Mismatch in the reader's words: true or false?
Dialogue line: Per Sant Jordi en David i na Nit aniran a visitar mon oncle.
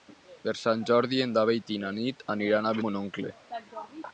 true